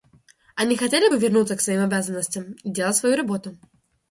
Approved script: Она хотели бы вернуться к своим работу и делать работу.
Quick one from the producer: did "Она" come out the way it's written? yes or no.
no